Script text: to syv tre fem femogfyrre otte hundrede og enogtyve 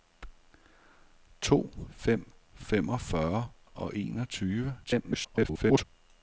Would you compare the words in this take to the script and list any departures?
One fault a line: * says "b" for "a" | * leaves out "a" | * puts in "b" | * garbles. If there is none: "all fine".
* leaves out "syv tre"
* leaves out "otte hundrede"
* garbles